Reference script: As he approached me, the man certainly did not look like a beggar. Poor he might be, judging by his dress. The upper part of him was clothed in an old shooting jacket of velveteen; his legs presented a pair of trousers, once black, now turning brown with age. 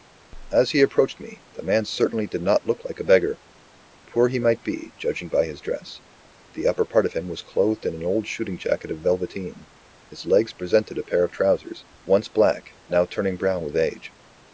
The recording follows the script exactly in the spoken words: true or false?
true